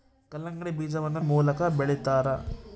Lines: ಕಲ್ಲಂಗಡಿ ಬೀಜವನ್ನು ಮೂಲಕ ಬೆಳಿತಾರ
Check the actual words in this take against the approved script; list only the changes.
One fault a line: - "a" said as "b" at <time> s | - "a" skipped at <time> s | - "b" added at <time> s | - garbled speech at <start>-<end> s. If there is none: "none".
none